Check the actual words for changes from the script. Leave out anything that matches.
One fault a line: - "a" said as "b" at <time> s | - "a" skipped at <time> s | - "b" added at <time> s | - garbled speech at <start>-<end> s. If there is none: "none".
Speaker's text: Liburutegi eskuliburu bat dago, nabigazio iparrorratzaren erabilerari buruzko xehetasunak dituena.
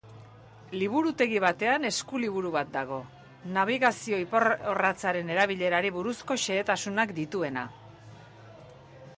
- "batean" added at 1.4 s